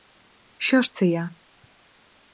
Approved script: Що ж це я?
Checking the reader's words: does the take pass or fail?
pass